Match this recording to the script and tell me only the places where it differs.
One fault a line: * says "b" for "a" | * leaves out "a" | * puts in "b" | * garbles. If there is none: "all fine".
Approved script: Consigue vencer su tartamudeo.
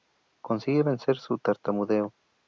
all fine